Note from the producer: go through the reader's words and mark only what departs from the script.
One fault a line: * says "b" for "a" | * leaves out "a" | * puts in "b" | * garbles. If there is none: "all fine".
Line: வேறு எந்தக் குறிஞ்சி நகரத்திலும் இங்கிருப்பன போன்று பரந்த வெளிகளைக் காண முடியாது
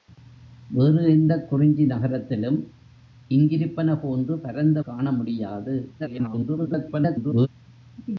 * leaves out "வெளிகளைக்"
* garbles